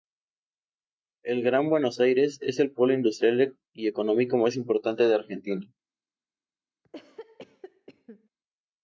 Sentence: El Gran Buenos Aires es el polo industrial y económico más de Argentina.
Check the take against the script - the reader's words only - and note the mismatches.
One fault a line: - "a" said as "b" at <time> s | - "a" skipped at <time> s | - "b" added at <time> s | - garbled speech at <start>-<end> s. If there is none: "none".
- "importante" added at 4.6 s